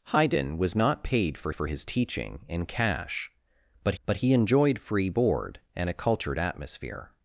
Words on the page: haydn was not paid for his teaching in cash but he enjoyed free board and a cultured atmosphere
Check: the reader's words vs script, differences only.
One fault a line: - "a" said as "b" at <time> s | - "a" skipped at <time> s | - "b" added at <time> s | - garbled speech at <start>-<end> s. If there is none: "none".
- "for" added at 1.5 s
- "but" added at 4.0 s